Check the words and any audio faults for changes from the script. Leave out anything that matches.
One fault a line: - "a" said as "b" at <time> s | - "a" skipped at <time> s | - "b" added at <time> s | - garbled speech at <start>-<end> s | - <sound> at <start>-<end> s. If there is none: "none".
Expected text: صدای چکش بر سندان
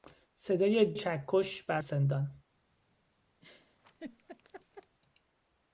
- laugh at 3.4-5.0 s